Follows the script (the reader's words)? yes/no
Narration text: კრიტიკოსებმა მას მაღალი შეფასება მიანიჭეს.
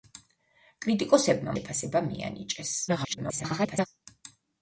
no